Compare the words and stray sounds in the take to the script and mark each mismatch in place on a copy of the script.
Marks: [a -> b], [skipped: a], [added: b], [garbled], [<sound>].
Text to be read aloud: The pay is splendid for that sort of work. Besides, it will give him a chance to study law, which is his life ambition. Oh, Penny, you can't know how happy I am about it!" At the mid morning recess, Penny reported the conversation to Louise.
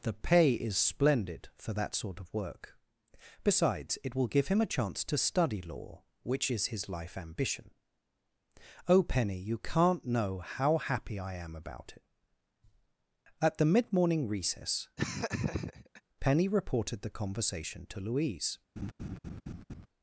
The pay is splendid for that sort of work. Besides, it will give him a chance to study law, which is his life ambition. Oh, Penny, you can't know how happy I am about it!" At the mid morning recess, [laugh] Penny reported the conversation to Louise. [laugh]